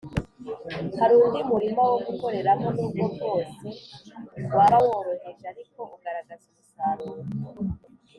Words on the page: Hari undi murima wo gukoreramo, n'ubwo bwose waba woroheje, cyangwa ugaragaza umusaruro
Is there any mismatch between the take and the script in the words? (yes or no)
yes